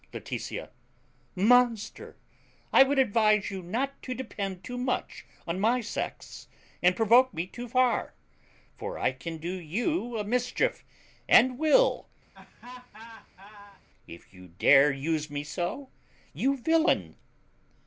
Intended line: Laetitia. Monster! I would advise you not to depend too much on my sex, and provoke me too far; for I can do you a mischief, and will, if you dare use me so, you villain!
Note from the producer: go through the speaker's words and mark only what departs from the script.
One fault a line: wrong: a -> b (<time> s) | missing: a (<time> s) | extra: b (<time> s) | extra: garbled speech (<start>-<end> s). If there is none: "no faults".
no faults